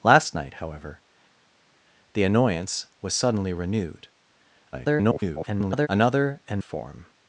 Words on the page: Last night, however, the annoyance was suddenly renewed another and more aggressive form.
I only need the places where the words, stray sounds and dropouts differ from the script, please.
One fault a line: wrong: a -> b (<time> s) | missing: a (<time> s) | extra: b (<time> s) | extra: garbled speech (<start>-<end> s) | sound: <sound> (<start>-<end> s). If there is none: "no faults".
extra: garbled speech (4.7-5.9 s)
missing: more aggressive (6.6 s)